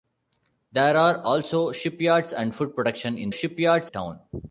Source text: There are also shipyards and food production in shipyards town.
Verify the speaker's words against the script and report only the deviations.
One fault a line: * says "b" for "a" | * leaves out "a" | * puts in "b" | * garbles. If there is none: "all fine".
all fine